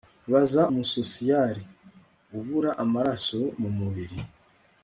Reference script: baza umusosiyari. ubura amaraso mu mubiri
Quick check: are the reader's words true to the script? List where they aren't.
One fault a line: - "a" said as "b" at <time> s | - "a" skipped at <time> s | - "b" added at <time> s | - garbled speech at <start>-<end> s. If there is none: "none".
none